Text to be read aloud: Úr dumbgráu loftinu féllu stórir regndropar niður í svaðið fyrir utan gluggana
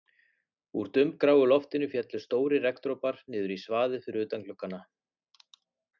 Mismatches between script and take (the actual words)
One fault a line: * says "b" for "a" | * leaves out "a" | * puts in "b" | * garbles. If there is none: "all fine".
all fine